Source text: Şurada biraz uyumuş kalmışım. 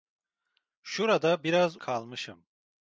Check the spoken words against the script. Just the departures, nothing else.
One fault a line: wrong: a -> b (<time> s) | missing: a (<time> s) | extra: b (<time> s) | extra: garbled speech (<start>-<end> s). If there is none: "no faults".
missing: uyumuş (1.8 s)